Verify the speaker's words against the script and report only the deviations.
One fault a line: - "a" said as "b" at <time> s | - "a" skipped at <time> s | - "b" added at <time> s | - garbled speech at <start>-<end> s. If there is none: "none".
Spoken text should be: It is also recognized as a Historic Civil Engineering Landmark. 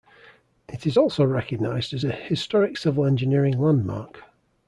none